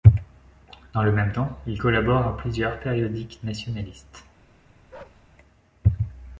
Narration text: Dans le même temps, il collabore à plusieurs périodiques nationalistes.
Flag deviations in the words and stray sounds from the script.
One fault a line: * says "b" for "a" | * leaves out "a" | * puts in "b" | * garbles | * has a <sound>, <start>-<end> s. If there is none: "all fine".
* has a bark, 4.9-5.2 s